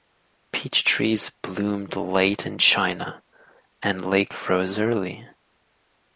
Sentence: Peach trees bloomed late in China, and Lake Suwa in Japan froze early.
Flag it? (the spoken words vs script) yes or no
yes